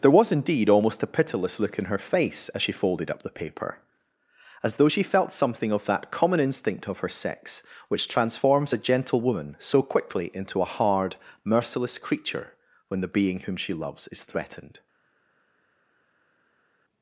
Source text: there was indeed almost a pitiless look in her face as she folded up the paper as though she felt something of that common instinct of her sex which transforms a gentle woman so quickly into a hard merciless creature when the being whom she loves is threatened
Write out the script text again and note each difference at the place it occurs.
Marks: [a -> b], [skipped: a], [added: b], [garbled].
there was indeed almost a pitiless look in her face as she folded up the paper as though she felt something of that common instinct of her sex which transforms a gentle woman so quickly into a hard merciless creature when the being whom she loves is threatened